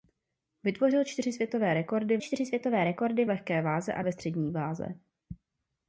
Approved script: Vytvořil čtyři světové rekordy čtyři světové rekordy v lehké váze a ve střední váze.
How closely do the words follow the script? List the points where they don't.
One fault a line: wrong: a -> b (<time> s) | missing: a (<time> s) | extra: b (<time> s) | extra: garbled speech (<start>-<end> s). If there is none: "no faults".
no faults